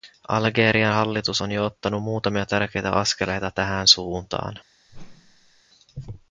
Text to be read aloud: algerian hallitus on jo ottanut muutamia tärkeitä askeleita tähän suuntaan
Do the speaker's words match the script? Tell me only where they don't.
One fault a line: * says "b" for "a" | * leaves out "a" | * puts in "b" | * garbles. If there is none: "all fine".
all fine